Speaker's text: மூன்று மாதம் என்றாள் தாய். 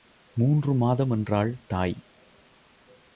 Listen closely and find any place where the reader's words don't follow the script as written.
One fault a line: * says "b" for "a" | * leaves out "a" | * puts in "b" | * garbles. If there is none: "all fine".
all fine